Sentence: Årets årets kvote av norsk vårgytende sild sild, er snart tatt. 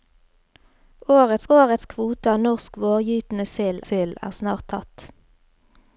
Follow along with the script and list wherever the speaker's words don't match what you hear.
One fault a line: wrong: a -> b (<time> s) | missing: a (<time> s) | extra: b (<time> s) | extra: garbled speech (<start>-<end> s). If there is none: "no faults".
no faults